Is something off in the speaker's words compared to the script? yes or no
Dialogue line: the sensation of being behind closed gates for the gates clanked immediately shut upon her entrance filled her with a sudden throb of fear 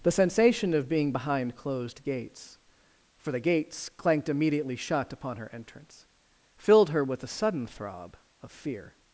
no